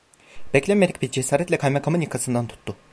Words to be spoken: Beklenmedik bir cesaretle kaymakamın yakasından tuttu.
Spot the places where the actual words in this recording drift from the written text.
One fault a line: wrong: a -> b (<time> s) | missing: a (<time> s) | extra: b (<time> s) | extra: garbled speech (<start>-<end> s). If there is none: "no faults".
no faults